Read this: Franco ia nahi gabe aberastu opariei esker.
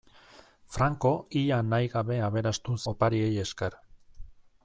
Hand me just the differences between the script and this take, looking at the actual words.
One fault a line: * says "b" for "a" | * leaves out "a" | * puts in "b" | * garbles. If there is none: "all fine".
all fine